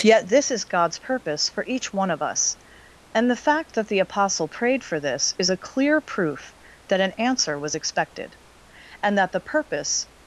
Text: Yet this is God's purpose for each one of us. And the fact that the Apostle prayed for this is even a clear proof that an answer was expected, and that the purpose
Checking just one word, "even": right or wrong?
wrong